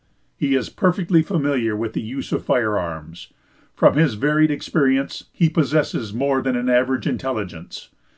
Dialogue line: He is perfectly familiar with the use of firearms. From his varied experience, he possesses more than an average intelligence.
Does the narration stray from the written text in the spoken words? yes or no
no